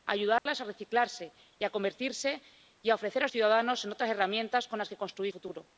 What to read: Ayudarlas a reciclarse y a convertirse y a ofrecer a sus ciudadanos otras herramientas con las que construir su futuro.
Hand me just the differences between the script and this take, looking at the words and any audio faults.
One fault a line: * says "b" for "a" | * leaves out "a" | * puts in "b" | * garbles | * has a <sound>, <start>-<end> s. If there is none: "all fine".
* has a dropout, 0.4-0.5 s
* leaves out "sus"
* leaves out "su"